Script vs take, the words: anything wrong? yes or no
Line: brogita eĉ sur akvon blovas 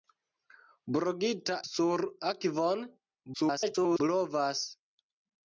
yes